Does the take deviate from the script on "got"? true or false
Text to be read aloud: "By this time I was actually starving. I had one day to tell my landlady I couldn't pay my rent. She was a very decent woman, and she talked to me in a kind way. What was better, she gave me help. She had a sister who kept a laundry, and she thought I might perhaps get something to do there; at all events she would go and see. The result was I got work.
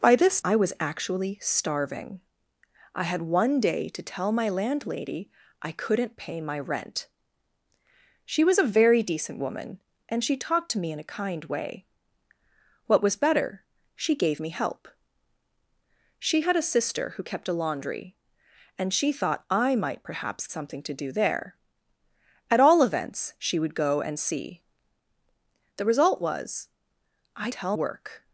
true